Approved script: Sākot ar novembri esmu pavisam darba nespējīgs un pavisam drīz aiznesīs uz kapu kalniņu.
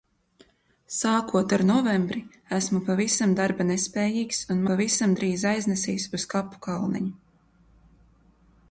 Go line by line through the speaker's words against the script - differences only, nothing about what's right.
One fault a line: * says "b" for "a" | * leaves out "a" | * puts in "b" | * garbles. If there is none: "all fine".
all fine